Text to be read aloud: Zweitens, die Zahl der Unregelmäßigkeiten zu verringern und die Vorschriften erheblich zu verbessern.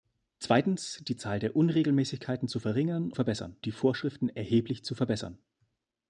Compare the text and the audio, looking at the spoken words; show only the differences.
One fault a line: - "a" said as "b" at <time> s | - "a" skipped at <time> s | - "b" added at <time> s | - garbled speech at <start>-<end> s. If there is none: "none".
- "und" said as "verbessern" at 3.1 s